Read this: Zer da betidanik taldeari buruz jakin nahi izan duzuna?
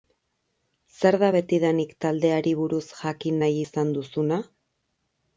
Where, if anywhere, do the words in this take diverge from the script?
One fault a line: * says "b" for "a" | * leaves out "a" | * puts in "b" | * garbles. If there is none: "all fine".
all fine